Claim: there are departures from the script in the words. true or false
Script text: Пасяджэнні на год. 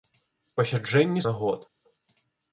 false